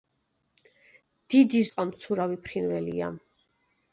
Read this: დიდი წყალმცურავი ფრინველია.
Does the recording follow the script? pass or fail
pass